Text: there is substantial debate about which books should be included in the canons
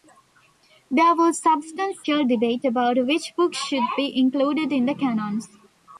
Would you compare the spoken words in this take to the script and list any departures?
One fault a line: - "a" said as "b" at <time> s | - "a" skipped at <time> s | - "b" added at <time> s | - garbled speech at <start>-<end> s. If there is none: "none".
- "is" said as "was" at 1.1 s